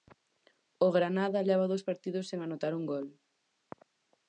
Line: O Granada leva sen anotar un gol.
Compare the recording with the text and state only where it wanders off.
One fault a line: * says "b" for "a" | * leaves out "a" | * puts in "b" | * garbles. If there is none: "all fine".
* puts in "dous partidos"